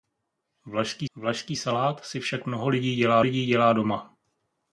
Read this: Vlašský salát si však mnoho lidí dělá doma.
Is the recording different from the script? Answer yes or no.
yes